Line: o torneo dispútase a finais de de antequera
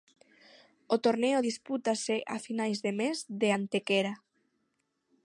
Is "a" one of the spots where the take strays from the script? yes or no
no